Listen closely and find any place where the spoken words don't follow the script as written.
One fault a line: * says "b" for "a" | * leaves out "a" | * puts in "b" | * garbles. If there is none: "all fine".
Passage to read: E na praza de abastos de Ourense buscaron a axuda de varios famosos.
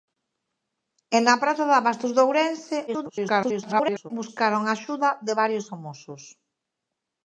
* garbles